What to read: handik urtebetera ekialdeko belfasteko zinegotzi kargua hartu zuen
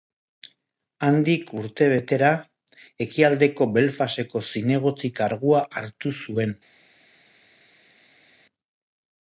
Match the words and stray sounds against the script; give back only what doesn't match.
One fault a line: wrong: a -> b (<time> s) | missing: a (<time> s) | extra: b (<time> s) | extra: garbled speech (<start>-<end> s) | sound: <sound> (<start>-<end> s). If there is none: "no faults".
no faults